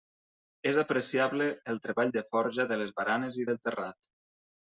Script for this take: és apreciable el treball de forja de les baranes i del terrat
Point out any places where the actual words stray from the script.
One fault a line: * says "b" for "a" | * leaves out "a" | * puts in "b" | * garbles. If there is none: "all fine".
all fine